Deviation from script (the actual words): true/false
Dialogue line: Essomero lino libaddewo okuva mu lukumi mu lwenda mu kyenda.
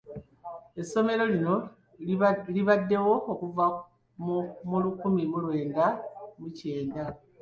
false